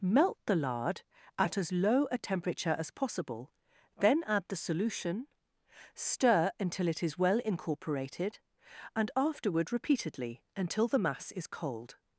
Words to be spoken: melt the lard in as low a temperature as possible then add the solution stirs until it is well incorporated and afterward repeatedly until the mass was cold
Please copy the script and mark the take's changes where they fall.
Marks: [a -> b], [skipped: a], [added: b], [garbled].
melt the lard [in -> at] as low a temperature as possible then add the solution [stirs -> stir] until it is well incorporated and afterward repeatedly until the mass [was -> is] cold